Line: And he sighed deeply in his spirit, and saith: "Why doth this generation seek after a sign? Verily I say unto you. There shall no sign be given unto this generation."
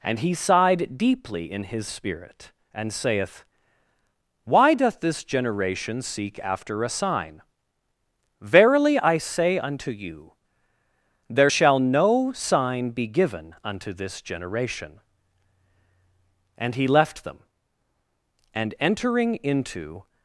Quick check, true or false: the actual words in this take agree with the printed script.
false